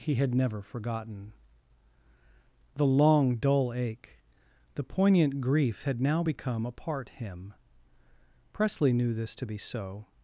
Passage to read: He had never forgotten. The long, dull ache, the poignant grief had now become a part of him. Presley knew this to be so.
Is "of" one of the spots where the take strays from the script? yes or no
yes